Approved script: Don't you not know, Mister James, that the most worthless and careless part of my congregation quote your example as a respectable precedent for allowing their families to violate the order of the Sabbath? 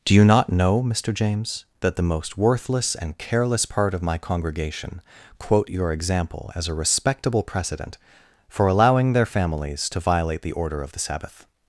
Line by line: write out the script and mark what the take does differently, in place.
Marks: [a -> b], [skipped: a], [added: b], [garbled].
[Don't -> Do] you not know, Mister James, that the most worthless and careless part of my congregation quote your example as a respectable precedent for allowing their families to violate the order of the Sabbath?